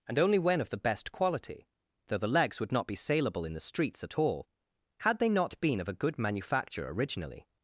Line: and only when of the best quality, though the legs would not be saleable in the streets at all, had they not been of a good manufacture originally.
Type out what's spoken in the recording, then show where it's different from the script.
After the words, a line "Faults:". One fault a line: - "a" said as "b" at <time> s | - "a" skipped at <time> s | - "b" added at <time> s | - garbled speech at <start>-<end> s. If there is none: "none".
and only when of the best quality, though the legs would not be saleable in the streets at all, had they not been of a good manufacture originally.
Faults:
none